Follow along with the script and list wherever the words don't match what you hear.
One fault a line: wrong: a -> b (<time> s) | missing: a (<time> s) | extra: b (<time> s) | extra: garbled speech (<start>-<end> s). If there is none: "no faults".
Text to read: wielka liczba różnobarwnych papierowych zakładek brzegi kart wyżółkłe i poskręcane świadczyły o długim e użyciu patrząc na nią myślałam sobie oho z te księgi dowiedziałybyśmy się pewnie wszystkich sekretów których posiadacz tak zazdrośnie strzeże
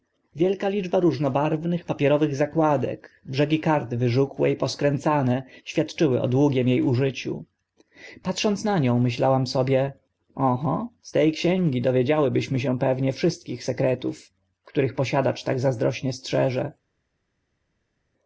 no faults